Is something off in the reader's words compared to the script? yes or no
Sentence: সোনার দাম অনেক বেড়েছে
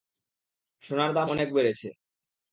no